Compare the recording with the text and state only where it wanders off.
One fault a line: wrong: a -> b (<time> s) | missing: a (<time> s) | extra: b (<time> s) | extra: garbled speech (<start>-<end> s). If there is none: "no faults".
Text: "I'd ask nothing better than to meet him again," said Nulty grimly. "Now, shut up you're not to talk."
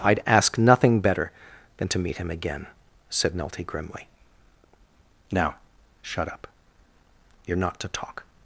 no faults